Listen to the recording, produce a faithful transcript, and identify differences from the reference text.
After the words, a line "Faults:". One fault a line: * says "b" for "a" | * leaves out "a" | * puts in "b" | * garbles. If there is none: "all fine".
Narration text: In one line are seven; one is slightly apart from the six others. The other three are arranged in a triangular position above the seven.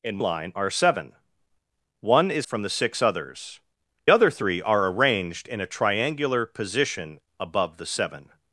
In line are seven; one is from the six others. Other three are arranged in a triangular position above the seven.
Faults:
* leaves out "one"
* leaves out "slightly apart"
* leaves out "The"